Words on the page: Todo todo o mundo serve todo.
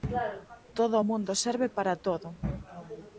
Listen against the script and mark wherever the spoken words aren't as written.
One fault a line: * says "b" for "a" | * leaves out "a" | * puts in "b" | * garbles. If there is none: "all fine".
* leaves out "todo"
* puts in "para"